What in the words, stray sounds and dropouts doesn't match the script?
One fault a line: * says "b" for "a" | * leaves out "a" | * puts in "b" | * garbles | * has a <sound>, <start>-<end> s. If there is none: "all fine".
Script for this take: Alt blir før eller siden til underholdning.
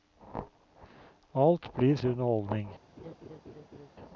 * leaves out "før eller siden"
* has a laugh, 3.0-3.9 s